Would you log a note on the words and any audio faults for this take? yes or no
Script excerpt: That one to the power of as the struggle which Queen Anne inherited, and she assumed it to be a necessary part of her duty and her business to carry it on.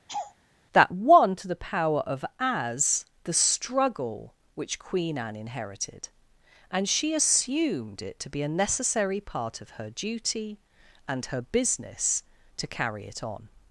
yes